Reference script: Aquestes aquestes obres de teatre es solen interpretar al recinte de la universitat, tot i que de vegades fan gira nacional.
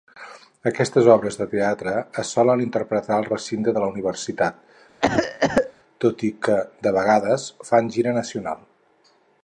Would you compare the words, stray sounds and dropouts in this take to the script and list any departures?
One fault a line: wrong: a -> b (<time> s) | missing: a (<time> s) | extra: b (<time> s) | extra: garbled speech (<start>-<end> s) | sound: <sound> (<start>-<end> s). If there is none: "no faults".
missing: aquestes (1.1 s)
sound: cough (5.0-5.7 s)